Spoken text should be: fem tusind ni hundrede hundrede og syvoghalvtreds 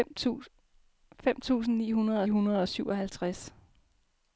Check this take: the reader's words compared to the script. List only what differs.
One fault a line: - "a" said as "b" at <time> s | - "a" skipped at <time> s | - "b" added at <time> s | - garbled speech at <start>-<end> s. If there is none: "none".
none